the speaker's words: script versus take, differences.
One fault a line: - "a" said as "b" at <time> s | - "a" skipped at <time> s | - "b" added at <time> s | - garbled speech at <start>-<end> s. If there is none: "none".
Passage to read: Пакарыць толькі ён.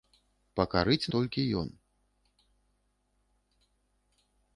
none